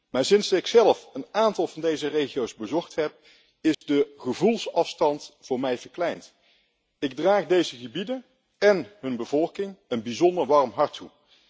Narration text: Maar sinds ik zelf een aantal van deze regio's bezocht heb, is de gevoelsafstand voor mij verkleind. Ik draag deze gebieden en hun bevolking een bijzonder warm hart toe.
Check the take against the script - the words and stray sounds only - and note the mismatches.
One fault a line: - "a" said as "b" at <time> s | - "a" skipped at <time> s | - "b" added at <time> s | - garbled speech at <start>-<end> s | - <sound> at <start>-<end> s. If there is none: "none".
- dropout at 3.7-3.8 s